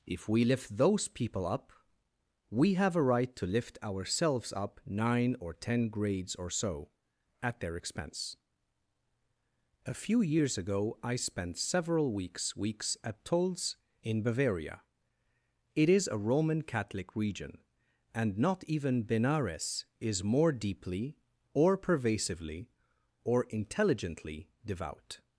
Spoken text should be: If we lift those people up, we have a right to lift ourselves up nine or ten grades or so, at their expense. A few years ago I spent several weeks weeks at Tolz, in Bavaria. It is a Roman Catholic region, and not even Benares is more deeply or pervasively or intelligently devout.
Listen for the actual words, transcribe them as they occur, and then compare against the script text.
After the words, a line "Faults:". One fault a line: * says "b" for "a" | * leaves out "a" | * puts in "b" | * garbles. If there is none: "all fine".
If we lift those people up, we have a right to lift ourselves up nine or ten grades or so, at their expense. A few years ago I spent several weeks weeks at Tolz, in Bavaria. It is a Roman Catholic region, and not even Benares is more deeply or pervasively or intelligently devout.
Faults:
all fine